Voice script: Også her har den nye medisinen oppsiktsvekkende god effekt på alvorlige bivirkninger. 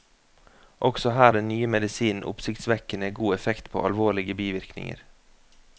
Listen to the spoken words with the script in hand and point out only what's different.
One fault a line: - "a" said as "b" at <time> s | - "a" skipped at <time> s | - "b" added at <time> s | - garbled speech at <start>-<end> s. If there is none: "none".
- "har" skipped at 1.3 s